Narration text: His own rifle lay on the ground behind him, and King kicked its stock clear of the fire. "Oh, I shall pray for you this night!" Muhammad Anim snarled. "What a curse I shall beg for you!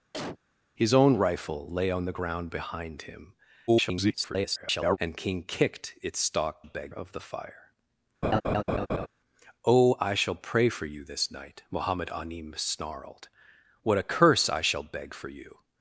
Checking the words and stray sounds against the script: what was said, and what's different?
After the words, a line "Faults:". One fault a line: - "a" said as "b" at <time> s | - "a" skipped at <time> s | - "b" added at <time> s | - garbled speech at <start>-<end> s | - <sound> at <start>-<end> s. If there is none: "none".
His own rifle lay on the ground behind him, [garbled] and King kicked its stock beg of the fire. "Oh, I shall pray for you this night!" Muhammad Anim snarled. "What a curse I shall beg for you!
Faults:
- cough at 0.1-0.4 s
- garbled speech at 3.7-5.0 s
- "clear" said as "beg" at 6.6 s
- laugh at 8.2-9.1 s